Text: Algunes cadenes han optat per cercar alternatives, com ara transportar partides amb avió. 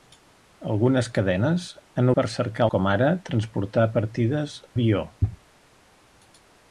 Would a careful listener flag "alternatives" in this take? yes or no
yes